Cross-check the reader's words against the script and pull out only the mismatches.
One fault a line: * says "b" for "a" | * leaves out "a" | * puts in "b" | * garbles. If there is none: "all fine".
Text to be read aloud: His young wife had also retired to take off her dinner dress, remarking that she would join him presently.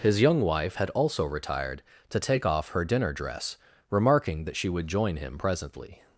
all fine